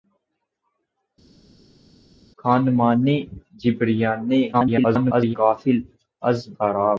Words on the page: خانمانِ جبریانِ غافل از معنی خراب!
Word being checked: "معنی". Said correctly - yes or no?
no